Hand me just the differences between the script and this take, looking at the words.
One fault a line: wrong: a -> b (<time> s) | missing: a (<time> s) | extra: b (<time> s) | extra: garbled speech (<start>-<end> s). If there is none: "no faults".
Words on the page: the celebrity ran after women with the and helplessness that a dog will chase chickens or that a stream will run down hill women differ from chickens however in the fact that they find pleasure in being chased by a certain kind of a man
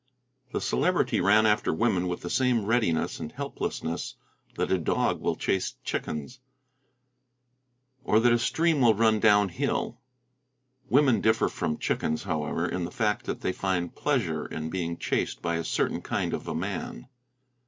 extra: same readiness (2.3 s)